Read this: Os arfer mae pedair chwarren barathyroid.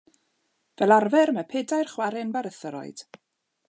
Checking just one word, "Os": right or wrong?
wrong